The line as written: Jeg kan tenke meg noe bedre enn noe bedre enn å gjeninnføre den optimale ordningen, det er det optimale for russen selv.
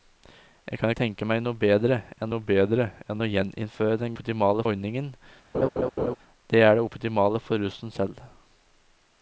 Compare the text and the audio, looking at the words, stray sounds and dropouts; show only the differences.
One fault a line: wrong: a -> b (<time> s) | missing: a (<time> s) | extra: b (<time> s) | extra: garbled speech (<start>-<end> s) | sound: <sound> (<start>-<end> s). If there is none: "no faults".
sound: laugh (5.5-6.2 s)